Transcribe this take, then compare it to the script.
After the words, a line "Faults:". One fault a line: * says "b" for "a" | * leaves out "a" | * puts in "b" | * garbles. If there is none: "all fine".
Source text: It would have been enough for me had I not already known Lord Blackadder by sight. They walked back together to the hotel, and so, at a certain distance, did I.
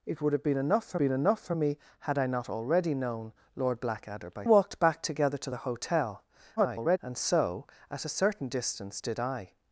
It would have been enough for been enough for me had I not already known Lord Blackadder by walked back together to the hotel, [garbled] and so, at a certain distance, did I.
Faults:
* puts in "been enough for"
* leaves out "sight They"
* garbles